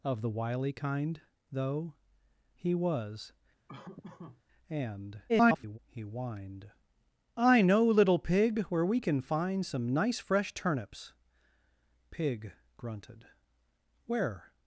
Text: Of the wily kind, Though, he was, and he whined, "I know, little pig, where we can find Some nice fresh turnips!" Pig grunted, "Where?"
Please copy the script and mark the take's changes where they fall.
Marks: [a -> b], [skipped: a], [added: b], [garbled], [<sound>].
Of the wily kind, Though, he was, [laugh] and [garbled] he whined, "I know, little pig, where we can find Some nice fresh turnips!" Pig grunted, "Where?"